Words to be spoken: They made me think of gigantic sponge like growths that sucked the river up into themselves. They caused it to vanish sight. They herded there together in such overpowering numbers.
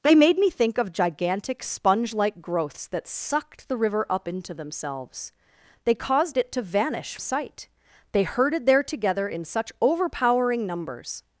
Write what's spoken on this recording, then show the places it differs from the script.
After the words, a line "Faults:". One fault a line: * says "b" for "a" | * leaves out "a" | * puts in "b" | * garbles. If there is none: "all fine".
They made me think of gigantic sponge like growths that sucked the river up into themselves. They caused it to vanish sight. They herded there together in such overpowering numbers.
Faults:
all fine